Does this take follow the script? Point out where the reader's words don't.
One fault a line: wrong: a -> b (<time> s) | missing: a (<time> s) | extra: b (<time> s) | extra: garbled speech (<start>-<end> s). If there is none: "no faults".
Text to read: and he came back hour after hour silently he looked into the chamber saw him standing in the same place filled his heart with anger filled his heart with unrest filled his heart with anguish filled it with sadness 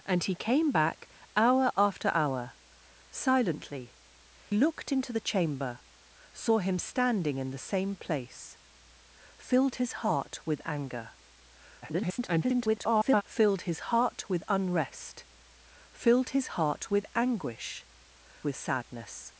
missing: he (4.0 s)
extra: garbled speech (11.8-13.2 s)
missing: filled it (17.9 s)